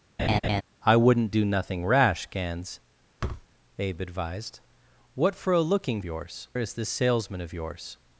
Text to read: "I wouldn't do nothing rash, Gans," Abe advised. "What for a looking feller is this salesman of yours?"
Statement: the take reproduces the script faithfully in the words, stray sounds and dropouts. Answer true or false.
false